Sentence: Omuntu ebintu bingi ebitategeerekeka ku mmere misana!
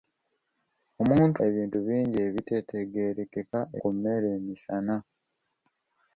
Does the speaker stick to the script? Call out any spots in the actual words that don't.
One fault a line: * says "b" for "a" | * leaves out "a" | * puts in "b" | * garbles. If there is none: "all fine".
all fine